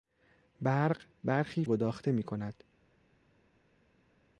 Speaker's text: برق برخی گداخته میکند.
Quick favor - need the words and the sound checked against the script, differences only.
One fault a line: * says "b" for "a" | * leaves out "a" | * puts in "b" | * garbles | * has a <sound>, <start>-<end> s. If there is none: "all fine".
all fine